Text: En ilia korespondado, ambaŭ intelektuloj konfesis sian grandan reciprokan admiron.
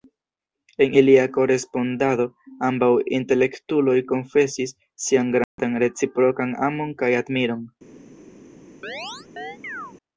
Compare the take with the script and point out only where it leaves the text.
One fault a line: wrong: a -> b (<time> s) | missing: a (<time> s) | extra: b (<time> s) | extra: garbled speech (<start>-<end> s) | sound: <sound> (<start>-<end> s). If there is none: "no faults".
sound: dropout (5.4-5.6 s)
extra: amon kaj (6.7 s)
sound: chirp (8.8-9.9 s)